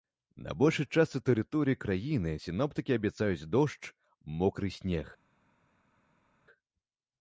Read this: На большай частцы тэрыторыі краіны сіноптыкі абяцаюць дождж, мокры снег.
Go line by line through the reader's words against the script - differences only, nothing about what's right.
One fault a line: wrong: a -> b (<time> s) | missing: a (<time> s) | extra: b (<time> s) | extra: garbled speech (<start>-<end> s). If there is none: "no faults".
no faults